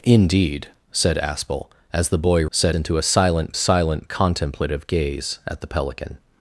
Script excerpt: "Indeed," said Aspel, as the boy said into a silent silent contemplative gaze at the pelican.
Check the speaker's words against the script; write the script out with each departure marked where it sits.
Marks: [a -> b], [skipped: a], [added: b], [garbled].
"Indeed," said Aspel, as the boy said into a silent silent contemplative gaze at the pelican.